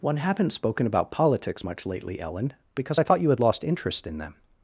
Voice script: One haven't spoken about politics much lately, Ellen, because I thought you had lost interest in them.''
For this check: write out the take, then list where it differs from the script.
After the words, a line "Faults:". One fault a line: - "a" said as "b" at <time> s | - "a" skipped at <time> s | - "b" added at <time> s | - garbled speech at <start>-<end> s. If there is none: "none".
One haven't spoken about politics much lately, Ellen, because I thought you had lost interest in them.''
Faults:
none